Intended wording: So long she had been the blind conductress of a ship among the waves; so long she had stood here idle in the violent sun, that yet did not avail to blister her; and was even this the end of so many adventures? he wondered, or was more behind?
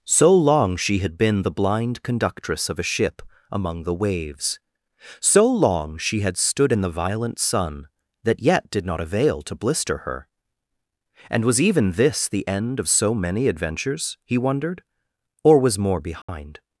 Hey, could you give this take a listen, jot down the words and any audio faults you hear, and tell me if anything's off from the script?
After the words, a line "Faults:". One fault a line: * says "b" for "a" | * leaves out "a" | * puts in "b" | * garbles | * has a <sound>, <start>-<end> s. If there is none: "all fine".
So long she had been the blind conductress of a ship among the waves; so long she had stood in the violent sun, that yet did not avail to blister her; and was even this the end of so many adventures? he wondered, or was more behind?
Faults:
* leaves out "here idle"
* has a dropout, 16.2-16.3 s